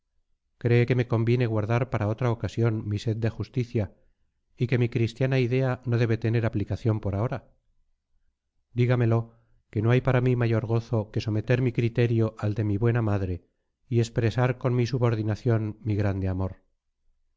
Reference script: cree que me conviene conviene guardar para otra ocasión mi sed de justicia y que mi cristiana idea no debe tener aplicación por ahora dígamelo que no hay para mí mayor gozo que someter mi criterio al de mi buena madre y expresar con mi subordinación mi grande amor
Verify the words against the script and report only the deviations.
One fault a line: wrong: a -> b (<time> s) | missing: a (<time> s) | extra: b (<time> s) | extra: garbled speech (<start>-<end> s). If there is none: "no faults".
missing: conviene (1.5 s)